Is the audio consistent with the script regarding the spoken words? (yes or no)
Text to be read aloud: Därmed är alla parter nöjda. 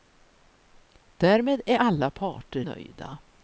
yes